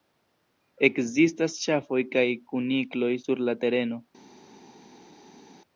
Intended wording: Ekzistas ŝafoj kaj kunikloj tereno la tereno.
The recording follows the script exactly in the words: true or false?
false